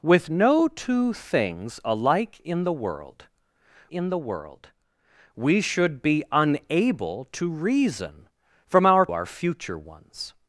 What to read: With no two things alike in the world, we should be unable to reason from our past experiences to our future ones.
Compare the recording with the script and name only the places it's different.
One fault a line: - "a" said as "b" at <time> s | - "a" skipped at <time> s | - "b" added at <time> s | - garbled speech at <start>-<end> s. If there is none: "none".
- "in the world" added at 3.9 s
- "past experiences to" skipped at 9.1 s